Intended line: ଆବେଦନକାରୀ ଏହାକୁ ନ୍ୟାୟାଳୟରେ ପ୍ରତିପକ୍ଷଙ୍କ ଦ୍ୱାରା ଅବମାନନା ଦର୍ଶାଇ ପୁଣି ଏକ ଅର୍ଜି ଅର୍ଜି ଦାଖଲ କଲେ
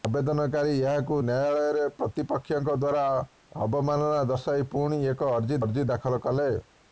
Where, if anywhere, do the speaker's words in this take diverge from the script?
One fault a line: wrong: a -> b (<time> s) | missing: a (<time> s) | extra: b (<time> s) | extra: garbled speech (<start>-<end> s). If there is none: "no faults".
no faults